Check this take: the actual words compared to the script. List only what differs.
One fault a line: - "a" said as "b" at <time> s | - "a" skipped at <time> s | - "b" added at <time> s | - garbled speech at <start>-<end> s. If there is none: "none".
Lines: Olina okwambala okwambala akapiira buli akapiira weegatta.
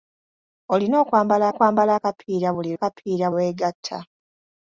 none